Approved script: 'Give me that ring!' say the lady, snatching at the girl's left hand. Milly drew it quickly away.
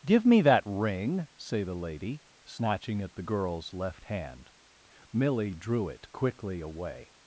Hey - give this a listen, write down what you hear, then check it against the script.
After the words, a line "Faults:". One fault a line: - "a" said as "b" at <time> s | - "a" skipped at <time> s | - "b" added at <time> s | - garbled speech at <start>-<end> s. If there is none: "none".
'Give me that ring!' say the lady, snatching at the girl's left hand. Milly drew it quickly away.
Faults:
none